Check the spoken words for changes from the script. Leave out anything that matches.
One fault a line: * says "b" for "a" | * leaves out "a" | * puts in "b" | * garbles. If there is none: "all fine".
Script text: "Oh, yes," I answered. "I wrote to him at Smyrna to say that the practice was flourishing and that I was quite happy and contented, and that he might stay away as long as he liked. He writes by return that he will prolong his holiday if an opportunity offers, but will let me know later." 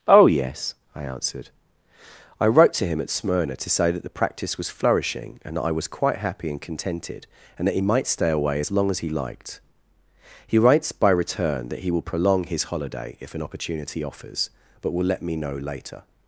all fine